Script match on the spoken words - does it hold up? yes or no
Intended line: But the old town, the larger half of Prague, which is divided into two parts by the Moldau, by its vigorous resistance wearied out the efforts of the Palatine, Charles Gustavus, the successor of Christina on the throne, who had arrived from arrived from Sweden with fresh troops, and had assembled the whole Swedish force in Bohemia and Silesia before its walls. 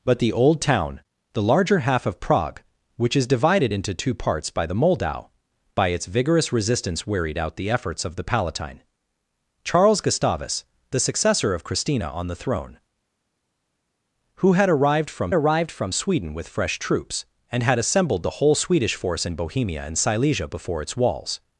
yes